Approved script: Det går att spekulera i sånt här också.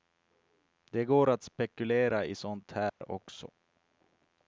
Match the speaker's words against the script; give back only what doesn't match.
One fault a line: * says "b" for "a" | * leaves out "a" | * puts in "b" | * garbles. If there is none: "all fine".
all fine